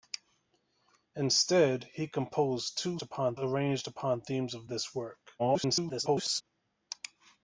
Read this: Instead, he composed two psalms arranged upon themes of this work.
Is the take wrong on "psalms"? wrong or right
wrong